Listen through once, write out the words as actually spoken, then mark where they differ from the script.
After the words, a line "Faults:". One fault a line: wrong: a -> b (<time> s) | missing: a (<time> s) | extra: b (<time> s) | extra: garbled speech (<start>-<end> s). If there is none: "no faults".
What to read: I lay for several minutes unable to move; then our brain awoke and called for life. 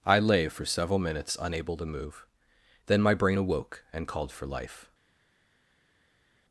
I lay for several minutes unable to move; then my brain awoke and called for life.
Faults:
wrong: our -> my (3.0 s)